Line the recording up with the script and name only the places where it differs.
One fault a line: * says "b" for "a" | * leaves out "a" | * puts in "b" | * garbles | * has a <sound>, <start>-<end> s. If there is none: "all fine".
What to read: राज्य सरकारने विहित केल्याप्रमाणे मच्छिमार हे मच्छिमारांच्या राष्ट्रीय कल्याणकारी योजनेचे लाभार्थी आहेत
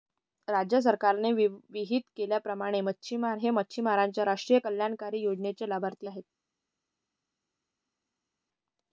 all fine